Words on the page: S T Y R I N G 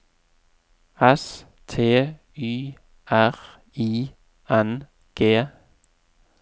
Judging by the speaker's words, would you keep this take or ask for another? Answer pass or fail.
pass